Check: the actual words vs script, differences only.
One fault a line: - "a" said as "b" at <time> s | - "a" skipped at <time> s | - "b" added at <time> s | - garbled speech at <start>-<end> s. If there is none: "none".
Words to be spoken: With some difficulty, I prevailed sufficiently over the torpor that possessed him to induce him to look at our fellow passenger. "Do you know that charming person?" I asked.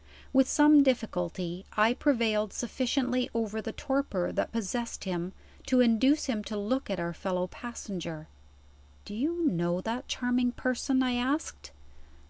none